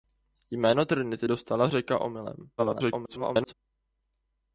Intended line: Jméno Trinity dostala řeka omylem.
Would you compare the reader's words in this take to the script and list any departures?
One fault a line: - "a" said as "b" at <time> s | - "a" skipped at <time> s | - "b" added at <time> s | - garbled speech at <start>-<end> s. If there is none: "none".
- garbled speech at 2.6-3.5 s